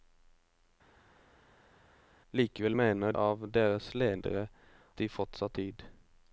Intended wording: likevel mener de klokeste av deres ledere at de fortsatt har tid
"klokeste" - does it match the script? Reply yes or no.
no